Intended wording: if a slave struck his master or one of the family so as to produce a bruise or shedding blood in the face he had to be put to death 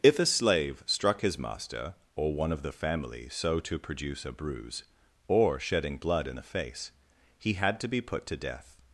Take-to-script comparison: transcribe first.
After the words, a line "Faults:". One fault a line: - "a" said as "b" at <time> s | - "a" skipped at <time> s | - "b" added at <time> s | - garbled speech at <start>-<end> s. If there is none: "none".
if a slave struck his master or one of the family so to produce a bruise or shedding blood in the face he had to be put to death
Faults:
- "as" skipped at 3.6 s